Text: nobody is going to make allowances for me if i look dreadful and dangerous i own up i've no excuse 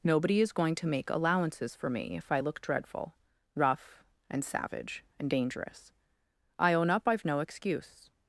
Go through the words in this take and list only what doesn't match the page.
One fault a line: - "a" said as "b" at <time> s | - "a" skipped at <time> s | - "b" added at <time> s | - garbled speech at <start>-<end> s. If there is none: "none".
- "rough and savage" added at 3.6 s